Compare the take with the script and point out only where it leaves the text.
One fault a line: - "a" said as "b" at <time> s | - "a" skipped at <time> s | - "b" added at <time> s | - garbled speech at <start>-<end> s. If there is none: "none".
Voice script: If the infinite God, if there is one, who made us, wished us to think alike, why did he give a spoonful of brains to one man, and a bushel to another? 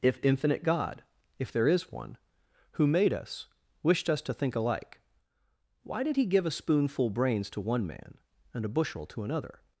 - "the" skipped at 0.2 s
- "of" skipped at 7.1 s